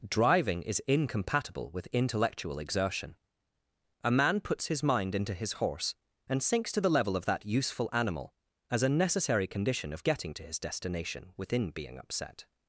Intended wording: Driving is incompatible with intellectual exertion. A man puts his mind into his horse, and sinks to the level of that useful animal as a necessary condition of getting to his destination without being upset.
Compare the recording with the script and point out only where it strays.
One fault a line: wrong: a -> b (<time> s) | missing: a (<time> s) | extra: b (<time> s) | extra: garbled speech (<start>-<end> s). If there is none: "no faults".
wrong: without -> within (11.4 s)